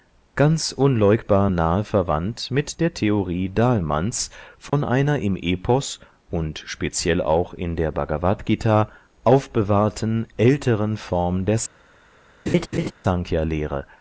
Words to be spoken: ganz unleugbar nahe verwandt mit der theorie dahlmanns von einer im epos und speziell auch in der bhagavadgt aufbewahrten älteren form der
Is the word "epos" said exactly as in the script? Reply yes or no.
yes